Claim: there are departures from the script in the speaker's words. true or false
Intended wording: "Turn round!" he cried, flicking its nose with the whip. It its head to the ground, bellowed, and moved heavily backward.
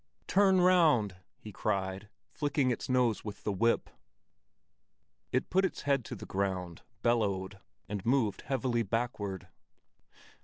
true